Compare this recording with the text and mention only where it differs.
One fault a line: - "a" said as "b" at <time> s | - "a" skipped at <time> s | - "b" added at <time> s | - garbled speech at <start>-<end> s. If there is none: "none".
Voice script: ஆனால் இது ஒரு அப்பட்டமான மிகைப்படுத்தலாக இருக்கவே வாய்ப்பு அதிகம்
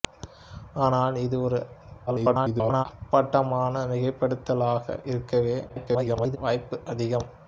- garbled speech at 2.1-2.8 s
- garbled speech at 5.7-6.4 s